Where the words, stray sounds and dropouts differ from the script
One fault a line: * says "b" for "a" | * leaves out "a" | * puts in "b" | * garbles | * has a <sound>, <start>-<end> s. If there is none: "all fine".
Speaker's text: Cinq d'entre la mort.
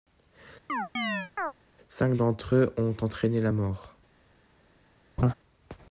* has a chirp, 0.7-1.5 s
* puts in "eux ont entraîné"
* has a laugh, 5.2-5.3 s